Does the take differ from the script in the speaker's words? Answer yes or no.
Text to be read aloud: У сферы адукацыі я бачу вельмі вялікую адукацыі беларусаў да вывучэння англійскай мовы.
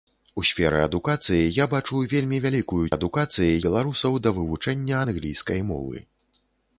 no